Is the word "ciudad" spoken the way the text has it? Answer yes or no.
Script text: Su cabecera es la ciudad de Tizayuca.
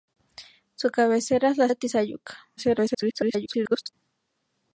no